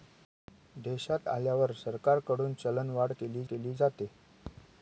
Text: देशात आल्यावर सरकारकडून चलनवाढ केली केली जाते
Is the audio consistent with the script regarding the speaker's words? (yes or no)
yes